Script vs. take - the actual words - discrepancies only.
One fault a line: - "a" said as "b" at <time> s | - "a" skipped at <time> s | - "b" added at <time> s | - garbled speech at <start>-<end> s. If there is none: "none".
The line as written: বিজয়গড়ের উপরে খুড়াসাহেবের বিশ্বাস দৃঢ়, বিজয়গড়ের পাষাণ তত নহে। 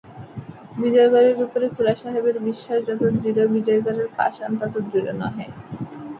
- "যত" added at 2.9 s
- "দৃঢ়" added at 4.8 s